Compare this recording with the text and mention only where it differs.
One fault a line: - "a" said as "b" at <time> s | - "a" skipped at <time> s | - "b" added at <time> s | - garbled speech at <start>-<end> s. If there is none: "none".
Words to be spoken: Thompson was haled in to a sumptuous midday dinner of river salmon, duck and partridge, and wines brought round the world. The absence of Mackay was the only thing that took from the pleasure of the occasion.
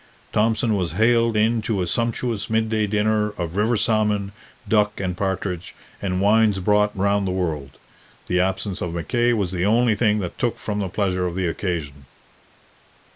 none